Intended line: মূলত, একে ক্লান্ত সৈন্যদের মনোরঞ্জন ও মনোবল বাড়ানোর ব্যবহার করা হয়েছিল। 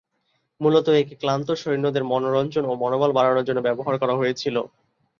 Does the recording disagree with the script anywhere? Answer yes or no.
yes